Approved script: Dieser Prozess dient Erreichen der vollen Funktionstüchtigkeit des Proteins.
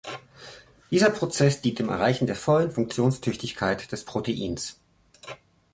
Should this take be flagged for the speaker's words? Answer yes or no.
yes